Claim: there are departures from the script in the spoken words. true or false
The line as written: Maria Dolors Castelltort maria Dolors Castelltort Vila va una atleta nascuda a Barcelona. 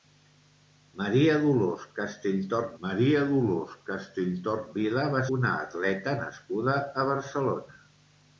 false